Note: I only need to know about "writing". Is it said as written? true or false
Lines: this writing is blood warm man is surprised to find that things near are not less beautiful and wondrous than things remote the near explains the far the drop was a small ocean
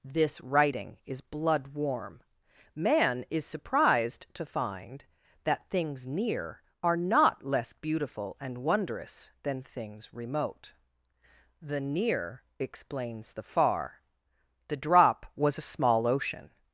true